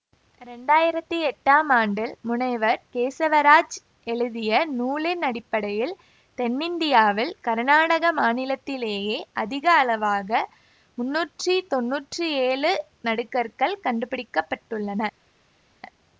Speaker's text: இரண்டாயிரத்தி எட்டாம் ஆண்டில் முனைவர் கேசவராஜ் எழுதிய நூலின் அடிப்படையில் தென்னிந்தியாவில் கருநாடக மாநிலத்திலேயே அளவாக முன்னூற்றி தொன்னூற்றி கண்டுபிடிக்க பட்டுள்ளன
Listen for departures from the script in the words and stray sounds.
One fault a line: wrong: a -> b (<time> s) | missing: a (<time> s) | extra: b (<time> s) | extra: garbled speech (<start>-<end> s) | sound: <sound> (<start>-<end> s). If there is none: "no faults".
extra: அதிக (9.4 s)
extra: ஏழு நடுகற்கள் (12.5 s)